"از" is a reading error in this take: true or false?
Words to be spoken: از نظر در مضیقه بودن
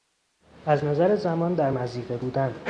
false